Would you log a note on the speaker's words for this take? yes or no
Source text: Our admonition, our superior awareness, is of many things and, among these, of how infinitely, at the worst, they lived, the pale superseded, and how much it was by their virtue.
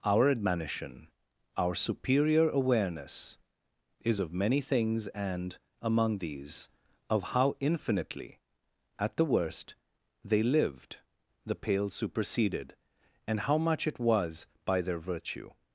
no